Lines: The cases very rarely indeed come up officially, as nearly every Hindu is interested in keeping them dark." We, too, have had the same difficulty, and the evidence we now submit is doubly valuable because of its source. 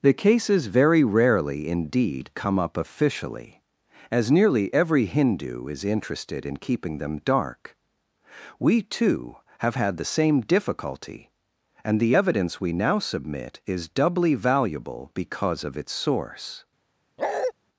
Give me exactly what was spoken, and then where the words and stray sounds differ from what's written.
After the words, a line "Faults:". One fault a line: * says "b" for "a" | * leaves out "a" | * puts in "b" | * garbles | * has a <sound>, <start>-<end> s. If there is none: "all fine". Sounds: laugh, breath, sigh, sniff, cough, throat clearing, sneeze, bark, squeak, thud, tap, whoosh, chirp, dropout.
The cases very rarely indeed come up officially, as nearly every Hindu is interested in keeping them dark." We, too, have had the same difficulty, and the evidence we now submit is doubly valuable because of its source.
Faults:
* has a bark, 17.2-17.5 s